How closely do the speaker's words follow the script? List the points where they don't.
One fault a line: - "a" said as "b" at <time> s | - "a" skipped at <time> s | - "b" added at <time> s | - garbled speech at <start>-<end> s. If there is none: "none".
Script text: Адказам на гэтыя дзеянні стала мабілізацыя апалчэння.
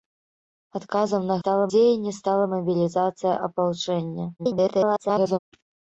- "гэтыя" said as "стала" at 1.4 s
- garbled speech at 4.4-5.4 s